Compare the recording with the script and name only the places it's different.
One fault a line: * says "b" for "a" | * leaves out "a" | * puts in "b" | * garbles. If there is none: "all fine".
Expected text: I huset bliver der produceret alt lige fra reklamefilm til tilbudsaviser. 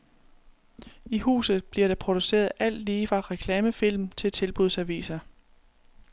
all fine